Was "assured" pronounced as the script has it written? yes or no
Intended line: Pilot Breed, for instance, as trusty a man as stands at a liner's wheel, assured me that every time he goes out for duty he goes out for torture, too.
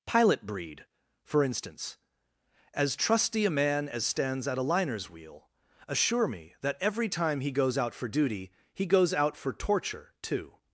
no